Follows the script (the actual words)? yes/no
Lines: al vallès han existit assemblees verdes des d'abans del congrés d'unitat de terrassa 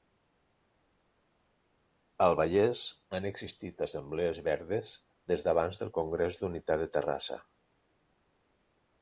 yes